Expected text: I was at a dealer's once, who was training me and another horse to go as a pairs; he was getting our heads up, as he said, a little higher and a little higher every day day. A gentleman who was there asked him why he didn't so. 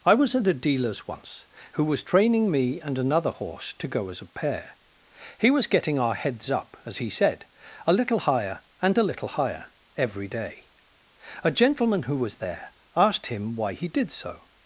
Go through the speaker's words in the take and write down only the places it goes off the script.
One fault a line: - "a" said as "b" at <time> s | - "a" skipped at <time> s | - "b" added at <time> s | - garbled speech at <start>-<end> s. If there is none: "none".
- "pairs" said as "pair" at 4.3 s
- "day" skipped at 10.7 s
- "didn't" said as "did" at 13.9 s